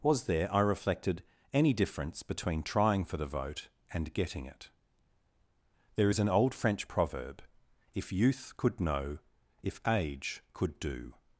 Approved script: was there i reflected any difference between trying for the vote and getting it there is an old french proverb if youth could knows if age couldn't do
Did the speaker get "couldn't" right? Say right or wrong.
wrong